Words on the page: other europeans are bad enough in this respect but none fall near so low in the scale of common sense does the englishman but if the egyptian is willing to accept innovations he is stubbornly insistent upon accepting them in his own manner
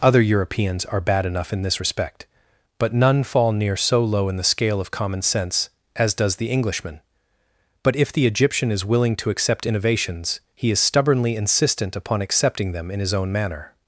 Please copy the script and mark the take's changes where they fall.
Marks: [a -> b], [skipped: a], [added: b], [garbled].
other europeans are bad enough in this respect but none fall near so low in the scale of common sense [added: as] does the englishman but if the egyptian is willing to accept innovations he is stubbornly insistent upon accepting them in his own manner